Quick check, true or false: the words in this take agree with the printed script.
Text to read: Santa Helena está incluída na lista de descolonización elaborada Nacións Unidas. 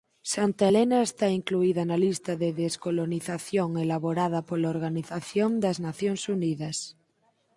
false